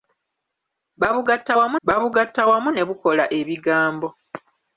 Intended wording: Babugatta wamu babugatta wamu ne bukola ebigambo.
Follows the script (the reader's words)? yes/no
yes